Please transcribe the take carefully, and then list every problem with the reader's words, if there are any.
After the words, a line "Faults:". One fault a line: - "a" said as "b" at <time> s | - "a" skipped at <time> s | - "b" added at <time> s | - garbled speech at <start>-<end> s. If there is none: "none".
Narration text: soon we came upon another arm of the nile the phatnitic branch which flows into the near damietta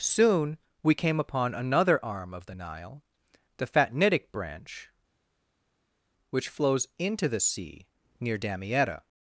soon we came upon another arm of the nile the phatnitic branch which flows into the sea near damietta
Faults:
- "sea" added at 7.4 s